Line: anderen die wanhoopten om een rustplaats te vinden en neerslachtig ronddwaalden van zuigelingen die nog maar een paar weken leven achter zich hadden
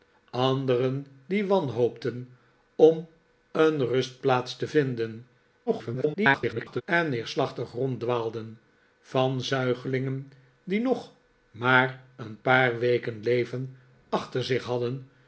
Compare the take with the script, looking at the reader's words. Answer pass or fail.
fail